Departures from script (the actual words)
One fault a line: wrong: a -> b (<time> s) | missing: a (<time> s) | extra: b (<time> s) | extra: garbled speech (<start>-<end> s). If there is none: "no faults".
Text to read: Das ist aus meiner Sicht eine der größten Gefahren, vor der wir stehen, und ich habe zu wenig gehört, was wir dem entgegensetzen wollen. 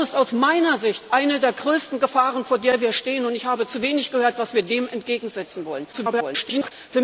extra: garbled speech (5.9-6.7 s)